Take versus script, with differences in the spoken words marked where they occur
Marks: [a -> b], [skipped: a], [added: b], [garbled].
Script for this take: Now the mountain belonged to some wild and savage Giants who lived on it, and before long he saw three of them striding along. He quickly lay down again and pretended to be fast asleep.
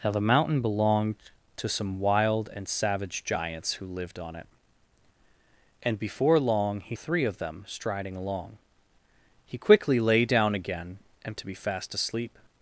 Now the mountain belonged to some wild and savage Giants who lived on it, and before long he [skipped: saw] three of them striding along. He quickly lay down again and [skipped: pretended] to be fast asleep.